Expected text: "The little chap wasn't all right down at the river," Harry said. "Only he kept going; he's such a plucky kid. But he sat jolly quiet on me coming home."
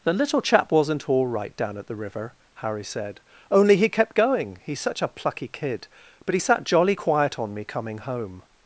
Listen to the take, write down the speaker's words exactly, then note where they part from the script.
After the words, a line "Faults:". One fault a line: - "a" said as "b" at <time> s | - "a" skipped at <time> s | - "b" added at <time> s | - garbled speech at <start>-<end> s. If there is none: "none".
"The little chap wasn't all right down at the river," Harry said. "Only he kept going; he's such a plucky kid. But he sat jolly quiet on me coming home."
Faults:
none